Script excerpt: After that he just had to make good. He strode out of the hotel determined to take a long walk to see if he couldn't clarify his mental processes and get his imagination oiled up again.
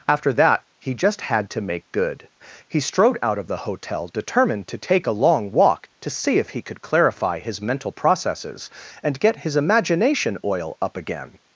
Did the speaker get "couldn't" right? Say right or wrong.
wrong